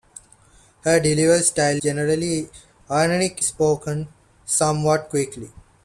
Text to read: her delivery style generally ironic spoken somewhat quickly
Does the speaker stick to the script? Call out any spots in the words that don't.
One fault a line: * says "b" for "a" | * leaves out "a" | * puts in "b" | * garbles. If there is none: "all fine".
all fine